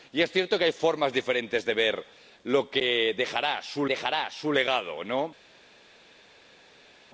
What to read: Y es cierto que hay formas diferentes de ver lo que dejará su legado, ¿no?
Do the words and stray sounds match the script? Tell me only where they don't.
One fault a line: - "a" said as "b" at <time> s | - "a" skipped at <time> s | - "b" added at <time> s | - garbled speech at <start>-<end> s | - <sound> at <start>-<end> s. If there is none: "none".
- "dejará su" added at 3.9 s